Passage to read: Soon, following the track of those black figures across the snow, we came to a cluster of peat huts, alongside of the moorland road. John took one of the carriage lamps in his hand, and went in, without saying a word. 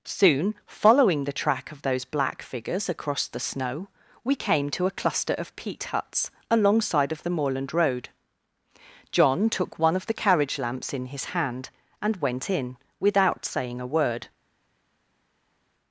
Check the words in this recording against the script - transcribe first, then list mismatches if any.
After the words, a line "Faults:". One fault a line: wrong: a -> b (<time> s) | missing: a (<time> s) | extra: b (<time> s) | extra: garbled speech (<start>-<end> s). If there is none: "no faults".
Soon, following the track of those black figures across the snow, we came to a cluster of peat huts, alongside of the moorland road. John took one of the carriage lamps in his hand, and went in, without saying a word.
Faults:
no faults